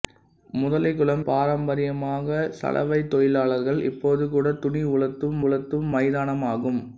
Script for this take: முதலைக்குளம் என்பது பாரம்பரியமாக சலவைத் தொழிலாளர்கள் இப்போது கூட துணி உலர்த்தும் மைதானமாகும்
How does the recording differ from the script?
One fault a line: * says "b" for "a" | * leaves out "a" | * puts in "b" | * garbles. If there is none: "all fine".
* leaves out "என்பது"
* puts in "உலர்த்தும்"